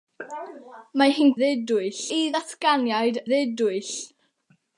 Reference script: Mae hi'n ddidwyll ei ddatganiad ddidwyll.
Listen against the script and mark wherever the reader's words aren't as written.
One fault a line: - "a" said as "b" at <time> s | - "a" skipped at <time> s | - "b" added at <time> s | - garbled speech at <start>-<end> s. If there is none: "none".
none